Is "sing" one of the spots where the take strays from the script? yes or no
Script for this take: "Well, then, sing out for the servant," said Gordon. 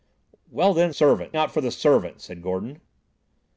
yes